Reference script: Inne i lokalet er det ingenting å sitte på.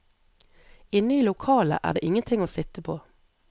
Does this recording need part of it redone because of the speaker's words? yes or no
no